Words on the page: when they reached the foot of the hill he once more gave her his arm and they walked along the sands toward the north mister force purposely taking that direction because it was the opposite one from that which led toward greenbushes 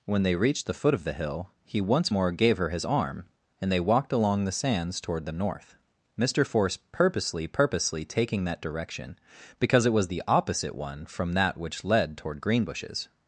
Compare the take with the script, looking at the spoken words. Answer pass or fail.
fail